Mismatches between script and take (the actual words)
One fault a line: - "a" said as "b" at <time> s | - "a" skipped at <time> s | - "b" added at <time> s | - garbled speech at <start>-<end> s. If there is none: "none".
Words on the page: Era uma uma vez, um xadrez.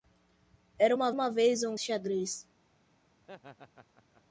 none